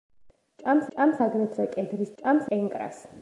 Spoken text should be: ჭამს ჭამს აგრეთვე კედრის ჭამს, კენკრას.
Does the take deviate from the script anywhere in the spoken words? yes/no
no